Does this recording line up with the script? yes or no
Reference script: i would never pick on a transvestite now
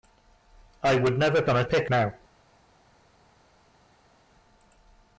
no